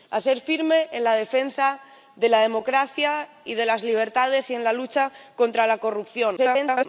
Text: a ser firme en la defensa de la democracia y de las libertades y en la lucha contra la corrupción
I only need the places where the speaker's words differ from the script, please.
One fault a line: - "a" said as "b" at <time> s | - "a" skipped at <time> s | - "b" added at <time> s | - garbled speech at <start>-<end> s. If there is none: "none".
- garbled speech at 6.4-6.9 s